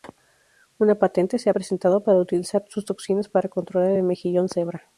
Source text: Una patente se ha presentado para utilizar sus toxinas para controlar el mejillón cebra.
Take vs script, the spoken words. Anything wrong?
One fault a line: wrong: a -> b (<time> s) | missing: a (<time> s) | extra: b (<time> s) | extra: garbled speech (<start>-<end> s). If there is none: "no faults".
no faults